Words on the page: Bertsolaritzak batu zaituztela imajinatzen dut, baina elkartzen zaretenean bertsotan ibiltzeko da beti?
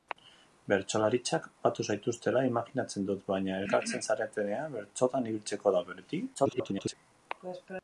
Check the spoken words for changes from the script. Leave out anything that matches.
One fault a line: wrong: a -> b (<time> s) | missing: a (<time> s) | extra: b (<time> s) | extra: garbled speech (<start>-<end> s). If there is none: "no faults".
extra: garbled speech (6.3-6.9 s)